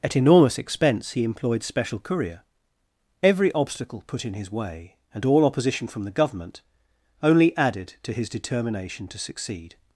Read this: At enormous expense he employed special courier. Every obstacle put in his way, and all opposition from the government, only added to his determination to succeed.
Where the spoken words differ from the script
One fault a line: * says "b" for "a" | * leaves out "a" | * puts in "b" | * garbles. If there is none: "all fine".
all fine